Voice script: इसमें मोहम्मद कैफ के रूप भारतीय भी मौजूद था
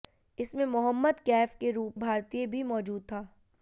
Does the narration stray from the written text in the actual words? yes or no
no